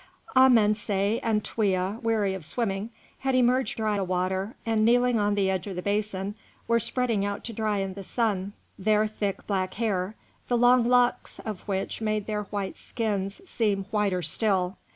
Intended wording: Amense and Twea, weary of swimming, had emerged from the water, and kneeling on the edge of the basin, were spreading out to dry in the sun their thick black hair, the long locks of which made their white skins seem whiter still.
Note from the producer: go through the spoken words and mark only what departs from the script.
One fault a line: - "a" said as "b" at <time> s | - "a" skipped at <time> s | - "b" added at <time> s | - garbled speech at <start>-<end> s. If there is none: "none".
- "from" said as "dry" at 3.7 s